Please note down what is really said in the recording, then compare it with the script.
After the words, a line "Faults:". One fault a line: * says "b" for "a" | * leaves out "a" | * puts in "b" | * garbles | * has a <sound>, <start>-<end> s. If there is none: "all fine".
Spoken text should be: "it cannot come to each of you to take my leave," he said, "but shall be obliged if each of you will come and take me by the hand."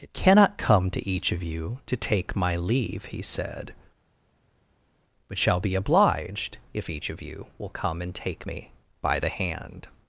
"it cannot come to each of you to take my leave," he said, "but shall be obliged if each of you will come and take me by the hand."
Faults:
all fine